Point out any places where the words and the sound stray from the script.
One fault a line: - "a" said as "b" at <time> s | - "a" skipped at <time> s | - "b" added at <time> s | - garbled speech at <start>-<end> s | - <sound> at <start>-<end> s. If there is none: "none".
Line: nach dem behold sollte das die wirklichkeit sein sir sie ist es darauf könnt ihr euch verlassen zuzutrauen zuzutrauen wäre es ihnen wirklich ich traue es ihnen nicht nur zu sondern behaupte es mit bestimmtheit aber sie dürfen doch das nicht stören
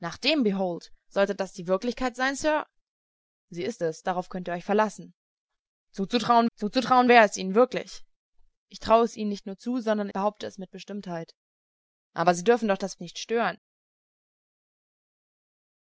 none